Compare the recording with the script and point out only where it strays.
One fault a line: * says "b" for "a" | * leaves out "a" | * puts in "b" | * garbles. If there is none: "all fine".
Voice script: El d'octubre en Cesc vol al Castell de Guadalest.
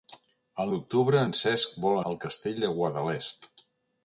all fine